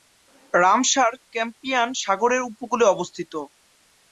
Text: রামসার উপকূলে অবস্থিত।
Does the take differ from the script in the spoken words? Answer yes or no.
yes